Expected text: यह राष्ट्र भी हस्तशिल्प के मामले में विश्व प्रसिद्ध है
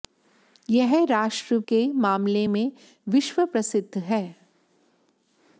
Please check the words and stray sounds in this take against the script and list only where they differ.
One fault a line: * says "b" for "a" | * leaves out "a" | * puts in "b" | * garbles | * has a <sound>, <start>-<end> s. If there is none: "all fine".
* leaves out "भी हस्तशिल्प"